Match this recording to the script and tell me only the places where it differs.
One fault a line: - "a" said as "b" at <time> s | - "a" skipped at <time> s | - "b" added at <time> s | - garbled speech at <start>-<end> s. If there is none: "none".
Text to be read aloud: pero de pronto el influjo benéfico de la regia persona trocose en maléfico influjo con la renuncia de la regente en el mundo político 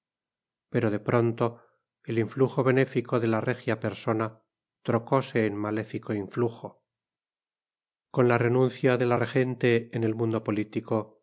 none